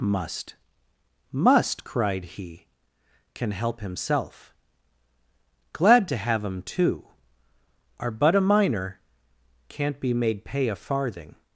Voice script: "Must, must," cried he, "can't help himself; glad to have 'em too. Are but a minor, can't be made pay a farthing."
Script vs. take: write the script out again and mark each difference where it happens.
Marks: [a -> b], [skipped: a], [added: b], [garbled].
"Must, must," cried he, ["can't -> can] help himself; glad to have 'em too. Are but a minor, can't be made pay a farthing."